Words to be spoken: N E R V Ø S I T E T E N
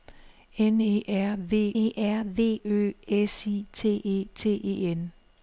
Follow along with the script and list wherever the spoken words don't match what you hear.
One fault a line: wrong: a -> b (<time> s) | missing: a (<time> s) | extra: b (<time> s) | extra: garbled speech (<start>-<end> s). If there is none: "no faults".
extra: E R V (1.7 s)